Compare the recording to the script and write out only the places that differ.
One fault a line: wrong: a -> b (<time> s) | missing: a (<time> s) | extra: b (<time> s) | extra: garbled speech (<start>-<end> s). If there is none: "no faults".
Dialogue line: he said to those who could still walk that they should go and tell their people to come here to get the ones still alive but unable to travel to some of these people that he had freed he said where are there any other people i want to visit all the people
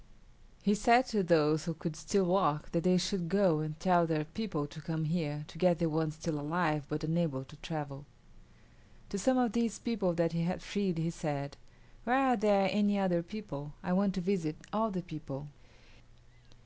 no faults